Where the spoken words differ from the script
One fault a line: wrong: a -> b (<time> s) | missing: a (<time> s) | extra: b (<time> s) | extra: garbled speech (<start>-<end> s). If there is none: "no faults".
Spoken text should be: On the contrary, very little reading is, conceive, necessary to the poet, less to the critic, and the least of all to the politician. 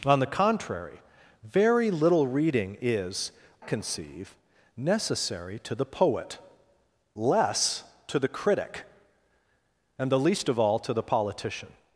no faults